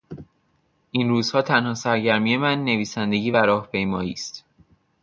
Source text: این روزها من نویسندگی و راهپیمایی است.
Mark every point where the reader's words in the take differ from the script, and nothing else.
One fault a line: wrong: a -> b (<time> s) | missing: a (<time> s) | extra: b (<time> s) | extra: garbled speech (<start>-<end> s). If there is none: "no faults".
extra: تنها سرگرمی (1.4 s)